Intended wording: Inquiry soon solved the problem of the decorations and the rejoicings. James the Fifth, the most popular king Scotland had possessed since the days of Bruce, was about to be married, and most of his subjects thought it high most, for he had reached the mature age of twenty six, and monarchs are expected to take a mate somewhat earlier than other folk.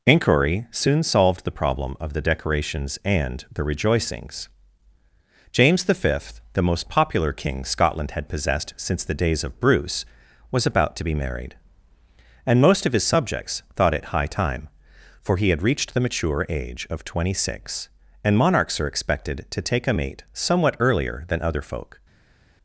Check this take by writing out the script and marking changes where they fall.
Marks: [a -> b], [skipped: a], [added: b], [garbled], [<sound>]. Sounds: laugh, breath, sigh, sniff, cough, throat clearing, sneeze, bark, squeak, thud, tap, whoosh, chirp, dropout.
Inquiry soon solved the problem of the decorations and the rejoicings. James the Fifth, the most popular king Scotland had possessed since the days of Bruce, was about to be married, and most of his subjects thought it high [most, -> time] for he had reached the mature age of twenty six, and monarchs are expected to take a mate somewhat earlier than other folk.